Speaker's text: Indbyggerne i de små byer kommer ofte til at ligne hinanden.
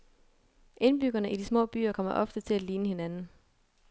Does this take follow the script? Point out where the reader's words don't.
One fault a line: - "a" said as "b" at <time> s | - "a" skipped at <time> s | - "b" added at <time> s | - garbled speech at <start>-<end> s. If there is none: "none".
none